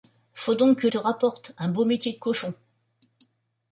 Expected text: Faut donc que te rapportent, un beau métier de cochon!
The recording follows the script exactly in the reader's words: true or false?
true